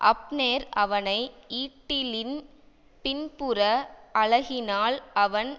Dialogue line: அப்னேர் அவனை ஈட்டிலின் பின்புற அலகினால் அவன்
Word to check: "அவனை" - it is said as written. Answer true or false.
true